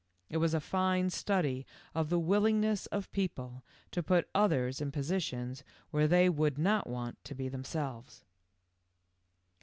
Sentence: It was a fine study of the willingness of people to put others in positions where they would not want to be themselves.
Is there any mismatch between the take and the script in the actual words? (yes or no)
no